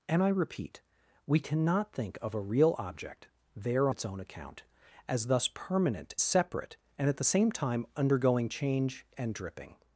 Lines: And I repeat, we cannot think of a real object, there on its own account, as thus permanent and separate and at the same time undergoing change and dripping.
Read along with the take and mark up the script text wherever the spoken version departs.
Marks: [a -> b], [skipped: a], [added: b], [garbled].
And I repeat, we cannot think of a real object, there [skipped: on] its own account, as thus permanent [skipped: and] separate and at the same time undergoing change and dripping.